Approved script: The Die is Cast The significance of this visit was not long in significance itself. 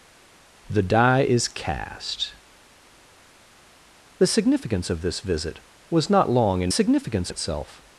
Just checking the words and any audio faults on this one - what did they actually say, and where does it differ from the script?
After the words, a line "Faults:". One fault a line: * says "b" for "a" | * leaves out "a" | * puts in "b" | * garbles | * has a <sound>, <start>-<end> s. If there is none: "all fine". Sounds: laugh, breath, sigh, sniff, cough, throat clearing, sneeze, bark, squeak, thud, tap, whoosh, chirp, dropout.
The Die is Cast The significance of this visit was not long in significance itself.
Faults:
all fine